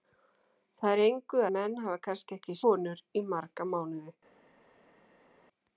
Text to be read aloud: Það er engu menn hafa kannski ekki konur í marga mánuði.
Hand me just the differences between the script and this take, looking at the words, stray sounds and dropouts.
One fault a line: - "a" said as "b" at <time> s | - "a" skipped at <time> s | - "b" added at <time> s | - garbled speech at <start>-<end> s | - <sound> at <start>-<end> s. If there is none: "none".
none